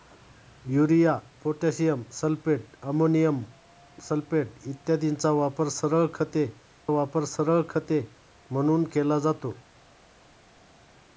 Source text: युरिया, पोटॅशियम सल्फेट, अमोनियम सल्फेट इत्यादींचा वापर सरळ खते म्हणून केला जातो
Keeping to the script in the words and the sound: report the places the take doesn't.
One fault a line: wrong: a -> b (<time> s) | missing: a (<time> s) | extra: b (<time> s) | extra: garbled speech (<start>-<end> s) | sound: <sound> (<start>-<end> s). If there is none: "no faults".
extra: वापर सरळ खते (6.9 s)